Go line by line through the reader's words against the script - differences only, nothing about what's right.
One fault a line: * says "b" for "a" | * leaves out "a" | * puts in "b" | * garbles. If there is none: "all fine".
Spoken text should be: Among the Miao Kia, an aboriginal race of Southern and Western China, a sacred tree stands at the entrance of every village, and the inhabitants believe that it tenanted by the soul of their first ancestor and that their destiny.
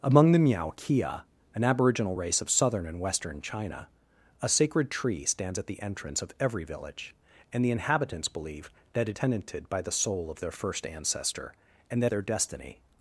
all fine